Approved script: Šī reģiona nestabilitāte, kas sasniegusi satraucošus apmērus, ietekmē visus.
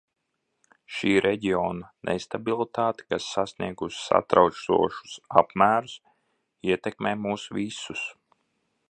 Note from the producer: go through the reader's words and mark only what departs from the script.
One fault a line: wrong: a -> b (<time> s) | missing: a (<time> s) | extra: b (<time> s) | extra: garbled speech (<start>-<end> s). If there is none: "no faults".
extra: mūs (7.3 s)